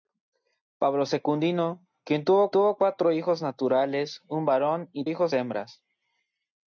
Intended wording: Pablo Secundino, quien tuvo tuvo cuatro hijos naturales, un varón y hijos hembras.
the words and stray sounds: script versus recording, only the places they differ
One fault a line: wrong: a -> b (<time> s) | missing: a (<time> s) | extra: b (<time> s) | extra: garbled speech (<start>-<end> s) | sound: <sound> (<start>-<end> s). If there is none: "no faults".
no faults